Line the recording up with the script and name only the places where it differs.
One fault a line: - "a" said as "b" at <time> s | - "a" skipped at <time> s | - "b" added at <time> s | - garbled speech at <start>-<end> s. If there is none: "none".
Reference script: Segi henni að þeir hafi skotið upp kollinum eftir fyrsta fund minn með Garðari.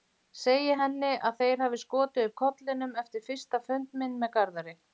none